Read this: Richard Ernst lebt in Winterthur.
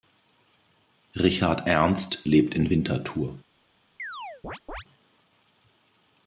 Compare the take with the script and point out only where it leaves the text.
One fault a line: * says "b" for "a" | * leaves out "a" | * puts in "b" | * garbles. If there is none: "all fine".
all fine